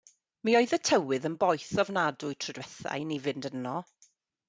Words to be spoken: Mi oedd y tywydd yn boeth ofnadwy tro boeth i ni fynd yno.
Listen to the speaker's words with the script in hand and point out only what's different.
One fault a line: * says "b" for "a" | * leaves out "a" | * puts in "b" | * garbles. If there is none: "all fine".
* says "dwytha" for "boeth"